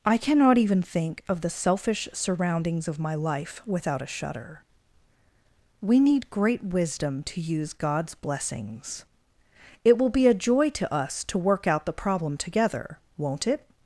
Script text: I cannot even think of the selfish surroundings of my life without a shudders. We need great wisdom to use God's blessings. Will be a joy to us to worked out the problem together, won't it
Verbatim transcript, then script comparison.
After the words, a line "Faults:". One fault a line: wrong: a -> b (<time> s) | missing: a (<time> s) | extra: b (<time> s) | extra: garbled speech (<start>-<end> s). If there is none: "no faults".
I cannot even think of the selfish surroundings of my life without a shudder. We need great wisdom to use God's blessings. It will be a joy to us to work out the problem together, won't it
Faults:
wrong: shudders -> shudder (4.1 s)
extra: It (9.8 s)
wrong: worked -> work (11.4 s)